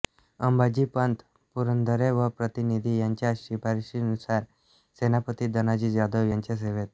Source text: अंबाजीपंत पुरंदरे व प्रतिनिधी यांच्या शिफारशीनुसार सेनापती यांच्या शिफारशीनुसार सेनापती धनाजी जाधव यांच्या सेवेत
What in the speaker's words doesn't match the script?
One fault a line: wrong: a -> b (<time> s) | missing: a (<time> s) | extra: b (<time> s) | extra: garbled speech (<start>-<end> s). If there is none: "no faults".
missing: यांच्या शिफारशीनुसार सेनापती (5.5 s)